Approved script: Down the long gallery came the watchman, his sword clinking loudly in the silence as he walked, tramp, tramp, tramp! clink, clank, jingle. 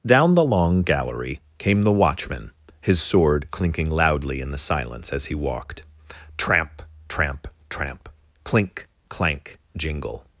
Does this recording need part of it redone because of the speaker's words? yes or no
no